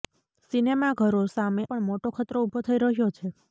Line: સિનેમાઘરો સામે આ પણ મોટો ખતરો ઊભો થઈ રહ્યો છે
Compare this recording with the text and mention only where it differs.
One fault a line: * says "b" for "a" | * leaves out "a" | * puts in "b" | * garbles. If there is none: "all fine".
* leaves out "આ"